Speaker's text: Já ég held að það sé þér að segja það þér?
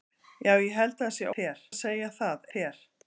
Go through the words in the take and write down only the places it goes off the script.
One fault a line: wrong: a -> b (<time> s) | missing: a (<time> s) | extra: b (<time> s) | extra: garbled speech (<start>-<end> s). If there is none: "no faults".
no faults